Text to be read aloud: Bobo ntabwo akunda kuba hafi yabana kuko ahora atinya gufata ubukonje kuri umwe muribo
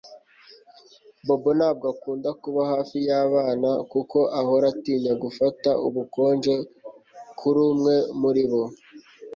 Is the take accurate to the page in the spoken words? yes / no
yes